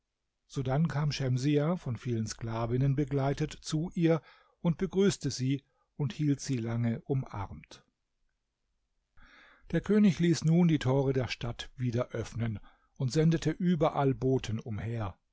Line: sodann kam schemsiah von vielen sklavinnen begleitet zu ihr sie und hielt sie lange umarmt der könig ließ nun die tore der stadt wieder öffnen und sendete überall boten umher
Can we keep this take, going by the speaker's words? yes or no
no